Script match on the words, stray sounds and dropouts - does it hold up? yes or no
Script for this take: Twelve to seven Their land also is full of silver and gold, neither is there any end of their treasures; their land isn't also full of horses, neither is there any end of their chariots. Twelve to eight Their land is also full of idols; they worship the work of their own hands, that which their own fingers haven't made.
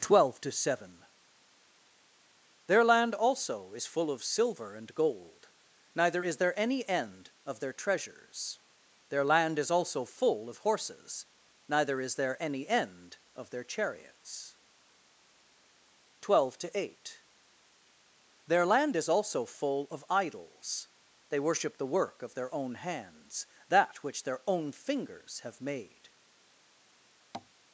no